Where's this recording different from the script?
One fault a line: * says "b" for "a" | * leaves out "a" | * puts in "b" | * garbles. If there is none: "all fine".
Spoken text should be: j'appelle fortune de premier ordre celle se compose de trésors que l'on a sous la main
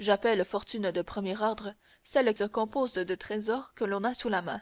all fine